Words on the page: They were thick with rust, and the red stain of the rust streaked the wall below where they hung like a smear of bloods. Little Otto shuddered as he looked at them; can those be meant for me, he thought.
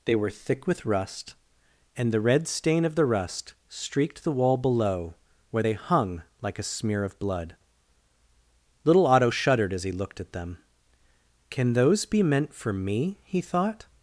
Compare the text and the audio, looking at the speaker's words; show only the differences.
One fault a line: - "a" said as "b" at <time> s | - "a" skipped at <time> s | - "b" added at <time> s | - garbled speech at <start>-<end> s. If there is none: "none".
- "bloods" said as "blood" at 7.2 s